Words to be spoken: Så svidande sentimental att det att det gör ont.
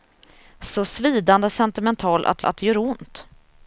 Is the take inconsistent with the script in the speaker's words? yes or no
no